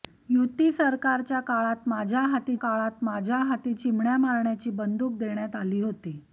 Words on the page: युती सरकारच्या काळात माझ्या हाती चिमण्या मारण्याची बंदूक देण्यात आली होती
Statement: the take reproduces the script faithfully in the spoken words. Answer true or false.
false